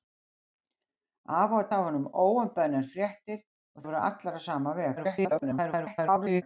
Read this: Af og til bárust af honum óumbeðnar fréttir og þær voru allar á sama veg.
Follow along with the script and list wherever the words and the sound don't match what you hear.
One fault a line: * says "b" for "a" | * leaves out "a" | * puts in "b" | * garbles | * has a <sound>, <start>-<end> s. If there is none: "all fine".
* leaves out "til bárust"
* leaves out "þær"
* garbles